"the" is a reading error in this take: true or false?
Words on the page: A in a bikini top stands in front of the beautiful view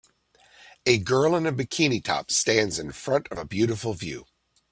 true